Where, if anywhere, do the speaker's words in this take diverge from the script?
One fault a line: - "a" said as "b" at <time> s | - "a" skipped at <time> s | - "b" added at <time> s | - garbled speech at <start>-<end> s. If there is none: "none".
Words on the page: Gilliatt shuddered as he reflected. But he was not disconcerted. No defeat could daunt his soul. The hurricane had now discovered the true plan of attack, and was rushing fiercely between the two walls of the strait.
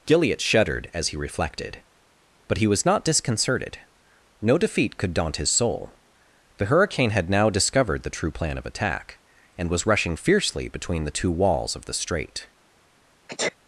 none